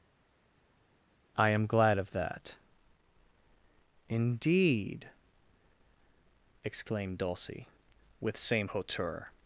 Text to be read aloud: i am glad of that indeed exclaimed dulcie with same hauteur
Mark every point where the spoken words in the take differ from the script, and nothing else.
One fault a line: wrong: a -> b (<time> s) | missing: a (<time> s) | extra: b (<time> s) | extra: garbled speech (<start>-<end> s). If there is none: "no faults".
no faults